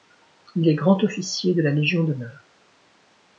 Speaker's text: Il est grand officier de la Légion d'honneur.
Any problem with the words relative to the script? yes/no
no